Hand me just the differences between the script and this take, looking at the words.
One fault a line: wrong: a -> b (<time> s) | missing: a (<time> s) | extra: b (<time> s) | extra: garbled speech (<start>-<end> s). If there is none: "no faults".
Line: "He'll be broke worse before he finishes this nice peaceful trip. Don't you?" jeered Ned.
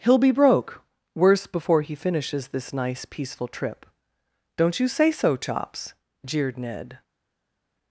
extra: say so Chops (4.9 s)